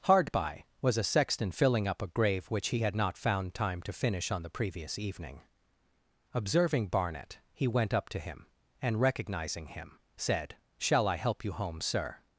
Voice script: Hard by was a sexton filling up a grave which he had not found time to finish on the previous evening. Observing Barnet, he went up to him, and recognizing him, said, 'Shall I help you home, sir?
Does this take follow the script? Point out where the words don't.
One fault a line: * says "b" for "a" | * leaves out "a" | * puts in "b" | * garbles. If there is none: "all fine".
all fine